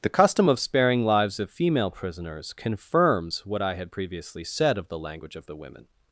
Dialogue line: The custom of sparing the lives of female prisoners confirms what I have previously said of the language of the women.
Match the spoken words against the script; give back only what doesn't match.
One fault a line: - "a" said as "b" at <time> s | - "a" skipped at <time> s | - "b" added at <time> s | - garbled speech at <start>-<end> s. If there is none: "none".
- "the" skipped at 1.0 s
- "have" said as "had" at 3.7 s